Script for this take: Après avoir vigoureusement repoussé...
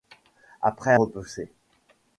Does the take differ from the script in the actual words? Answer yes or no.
yes